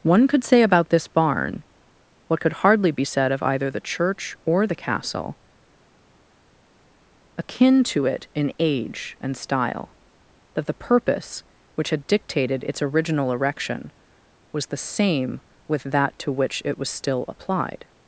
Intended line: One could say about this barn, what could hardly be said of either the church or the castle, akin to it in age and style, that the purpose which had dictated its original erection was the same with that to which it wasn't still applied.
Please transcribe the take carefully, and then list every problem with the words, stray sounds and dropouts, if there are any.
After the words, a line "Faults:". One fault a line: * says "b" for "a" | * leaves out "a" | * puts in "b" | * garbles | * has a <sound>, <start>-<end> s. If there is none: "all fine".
One could say about this barn, what could hardly be said of either the church or the castle, akin to it in age and style, that the purpose which had dictated its original erection was the same with that to which it was still applied.
Faults:
* says "was" for "wasn't"